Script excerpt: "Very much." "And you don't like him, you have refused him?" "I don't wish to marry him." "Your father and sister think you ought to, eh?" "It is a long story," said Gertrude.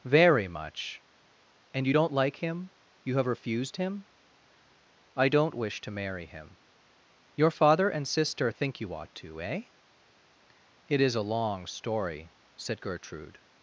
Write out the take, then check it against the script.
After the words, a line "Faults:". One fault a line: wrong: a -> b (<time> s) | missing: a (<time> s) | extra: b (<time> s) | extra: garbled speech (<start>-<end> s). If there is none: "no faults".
"Very much." "And you don't like him, you have refused him?" "I don't wish to marry him." "Your father and sister think you ought to, eh?" "It is a long story," said Gertrude.
Faults:
no faults